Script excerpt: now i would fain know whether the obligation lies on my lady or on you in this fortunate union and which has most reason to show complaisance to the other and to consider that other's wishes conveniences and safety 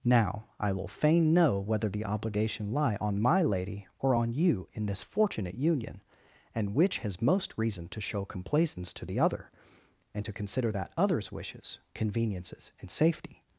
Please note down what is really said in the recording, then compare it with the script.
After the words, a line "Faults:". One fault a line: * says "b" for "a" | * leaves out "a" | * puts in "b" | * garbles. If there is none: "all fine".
now i will fain know whether the obligation lie on my lady or on you in this fortunate union and which has most reason to show complaisance to the other and to consider that other's wishes conveniences and safety
Faults:
* says "will" for "would"
* says "lie" for "lies"